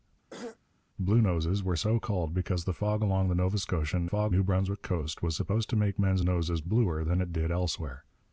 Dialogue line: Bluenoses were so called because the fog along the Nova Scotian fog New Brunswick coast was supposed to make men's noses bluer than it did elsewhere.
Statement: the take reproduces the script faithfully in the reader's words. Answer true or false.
true